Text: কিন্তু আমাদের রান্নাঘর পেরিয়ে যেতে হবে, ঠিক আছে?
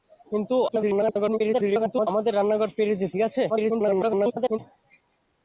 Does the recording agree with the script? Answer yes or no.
no